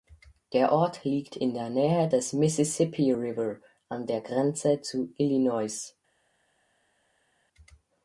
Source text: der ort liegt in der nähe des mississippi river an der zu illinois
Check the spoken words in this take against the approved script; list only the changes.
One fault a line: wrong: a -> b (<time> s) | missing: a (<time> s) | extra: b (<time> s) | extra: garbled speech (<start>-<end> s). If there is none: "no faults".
extra: grenze (4.2 s)